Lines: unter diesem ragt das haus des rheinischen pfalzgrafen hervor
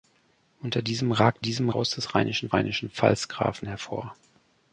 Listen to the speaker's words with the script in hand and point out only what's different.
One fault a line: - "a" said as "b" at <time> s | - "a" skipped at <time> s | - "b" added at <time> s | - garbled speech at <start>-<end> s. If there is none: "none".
- "das" said as "diesem" at 1.4 s
- "rheinischen" added at 2.5 s